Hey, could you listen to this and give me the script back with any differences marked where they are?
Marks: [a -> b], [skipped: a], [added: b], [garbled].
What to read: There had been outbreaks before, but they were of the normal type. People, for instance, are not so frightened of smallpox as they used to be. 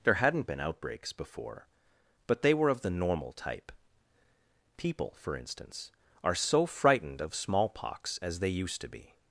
There [had -> hadn't] been outbreaks before, but they were of the normal type. People, for instance, are [skipped: not] so frightened of smallpox as they used to be.